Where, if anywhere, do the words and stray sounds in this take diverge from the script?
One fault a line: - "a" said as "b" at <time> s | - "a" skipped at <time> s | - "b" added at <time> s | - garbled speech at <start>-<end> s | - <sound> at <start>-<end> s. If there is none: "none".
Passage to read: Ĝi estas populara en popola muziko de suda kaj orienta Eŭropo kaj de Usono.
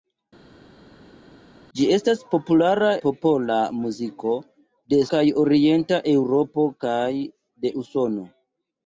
- "en" skipped at 2.9 s
- "suda" skipped at 5.0 s